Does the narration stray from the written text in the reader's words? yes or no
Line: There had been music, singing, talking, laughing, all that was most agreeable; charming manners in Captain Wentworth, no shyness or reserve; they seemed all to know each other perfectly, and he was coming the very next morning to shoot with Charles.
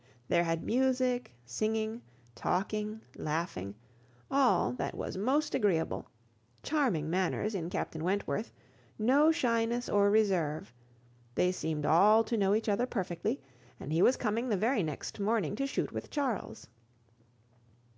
yes